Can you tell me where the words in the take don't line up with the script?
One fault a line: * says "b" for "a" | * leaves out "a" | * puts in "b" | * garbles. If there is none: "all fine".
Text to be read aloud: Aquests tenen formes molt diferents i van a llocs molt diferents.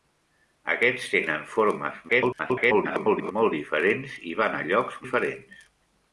* garbles
* leaves out "molt"